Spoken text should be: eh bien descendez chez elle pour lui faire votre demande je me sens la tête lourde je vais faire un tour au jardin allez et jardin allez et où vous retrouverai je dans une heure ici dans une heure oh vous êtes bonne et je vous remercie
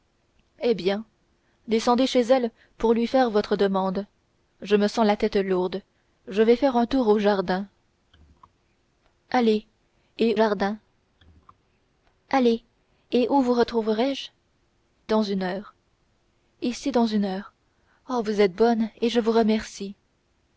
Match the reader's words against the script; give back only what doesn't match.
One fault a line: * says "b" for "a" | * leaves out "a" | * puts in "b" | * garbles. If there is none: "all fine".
all fine